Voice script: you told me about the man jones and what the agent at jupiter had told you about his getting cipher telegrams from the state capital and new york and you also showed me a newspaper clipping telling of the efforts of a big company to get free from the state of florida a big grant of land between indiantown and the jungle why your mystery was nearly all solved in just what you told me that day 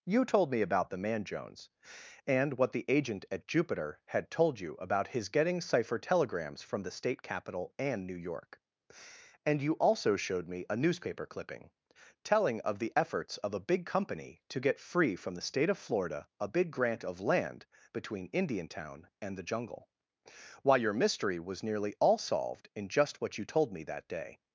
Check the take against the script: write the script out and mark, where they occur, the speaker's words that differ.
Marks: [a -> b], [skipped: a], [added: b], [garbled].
you told me about the man jones and what the agent at jupiter had told you about his getting cipher telegrams from the state capital and new york and you also showed me a newspaper clipping telling of the efforts of a big company to get free from the state of florida a big grant of land between indiantown and the jungle why your mystery was nearly all solved in just what you told me that day